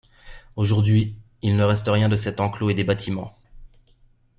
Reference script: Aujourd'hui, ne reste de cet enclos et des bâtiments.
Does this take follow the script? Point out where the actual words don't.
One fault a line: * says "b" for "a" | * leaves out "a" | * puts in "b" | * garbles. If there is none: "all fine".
* puts in "il"
* puts in "rien"